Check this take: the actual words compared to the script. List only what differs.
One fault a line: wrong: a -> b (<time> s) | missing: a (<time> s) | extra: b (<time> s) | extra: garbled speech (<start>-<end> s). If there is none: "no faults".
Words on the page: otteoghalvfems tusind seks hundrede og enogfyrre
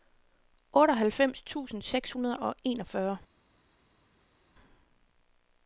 no faults